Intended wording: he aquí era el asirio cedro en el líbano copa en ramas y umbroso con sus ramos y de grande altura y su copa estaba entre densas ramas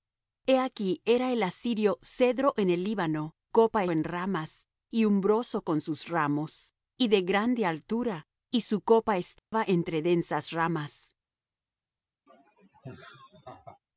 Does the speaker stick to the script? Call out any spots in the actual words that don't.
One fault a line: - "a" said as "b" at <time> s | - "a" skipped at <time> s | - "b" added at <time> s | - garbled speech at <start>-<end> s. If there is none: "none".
none